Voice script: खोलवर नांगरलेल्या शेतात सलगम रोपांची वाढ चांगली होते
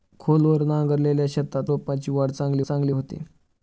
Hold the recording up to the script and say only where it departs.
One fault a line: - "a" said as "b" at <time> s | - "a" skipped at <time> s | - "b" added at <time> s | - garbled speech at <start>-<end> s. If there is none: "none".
- "सलगम" skipped at 1.7 s
- "चांगली" added at 2.6 s